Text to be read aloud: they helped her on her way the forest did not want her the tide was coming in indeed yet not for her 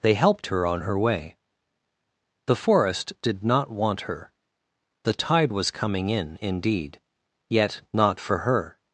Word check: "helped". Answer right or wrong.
right